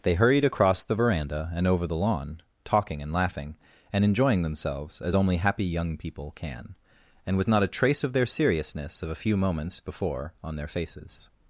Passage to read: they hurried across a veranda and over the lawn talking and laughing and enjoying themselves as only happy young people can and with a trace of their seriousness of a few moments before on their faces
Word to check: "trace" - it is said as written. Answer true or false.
true